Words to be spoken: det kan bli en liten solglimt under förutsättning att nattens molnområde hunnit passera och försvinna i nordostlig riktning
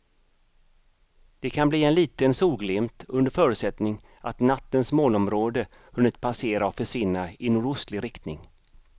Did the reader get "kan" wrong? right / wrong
right